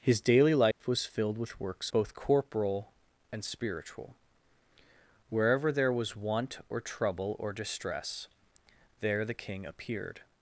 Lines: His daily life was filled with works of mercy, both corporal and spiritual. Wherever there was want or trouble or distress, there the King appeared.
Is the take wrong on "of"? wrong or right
wrong